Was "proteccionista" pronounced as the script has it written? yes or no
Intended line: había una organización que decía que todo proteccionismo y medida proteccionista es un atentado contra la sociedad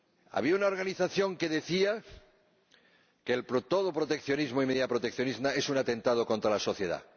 yes